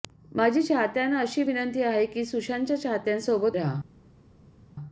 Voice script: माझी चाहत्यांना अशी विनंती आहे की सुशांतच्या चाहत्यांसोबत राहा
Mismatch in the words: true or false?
false